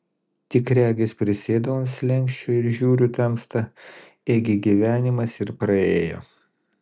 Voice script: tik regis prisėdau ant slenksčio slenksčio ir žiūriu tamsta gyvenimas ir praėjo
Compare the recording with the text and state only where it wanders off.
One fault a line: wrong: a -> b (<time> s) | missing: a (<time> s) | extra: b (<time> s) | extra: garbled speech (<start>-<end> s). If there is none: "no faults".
missing: slenksčio (2.5 s)
extra: ėgi (4.4 s)